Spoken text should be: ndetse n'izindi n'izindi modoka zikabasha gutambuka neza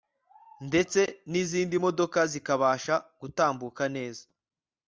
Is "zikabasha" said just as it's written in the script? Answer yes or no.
yes